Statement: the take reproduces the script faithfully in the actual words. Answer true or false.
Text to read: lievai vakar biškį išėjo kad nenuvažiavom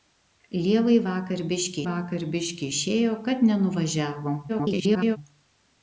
false